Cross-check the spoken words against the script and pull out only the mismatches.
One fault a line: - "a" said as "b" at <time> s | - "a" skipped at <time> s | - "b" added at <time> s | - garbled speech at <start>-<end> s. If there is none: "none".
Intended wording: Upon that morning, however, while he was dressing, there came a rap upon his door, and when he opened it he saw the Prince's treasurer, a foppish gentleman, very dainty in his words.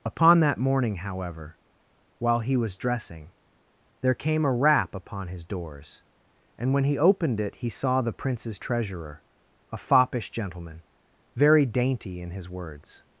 - "door" said as "doors" at 5.5 s